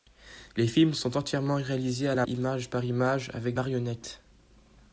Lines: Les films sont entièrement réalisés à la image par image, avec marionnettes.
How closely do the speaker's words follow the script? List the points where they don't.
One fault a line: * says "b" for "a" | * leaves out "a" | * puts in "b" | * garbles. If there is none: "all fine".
all fine